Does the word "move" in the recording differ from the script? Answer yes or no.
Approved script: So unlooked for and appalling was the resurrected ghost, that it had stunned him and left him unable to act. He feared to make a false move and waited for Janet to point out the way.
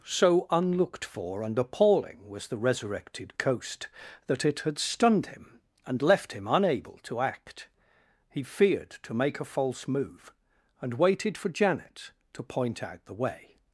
no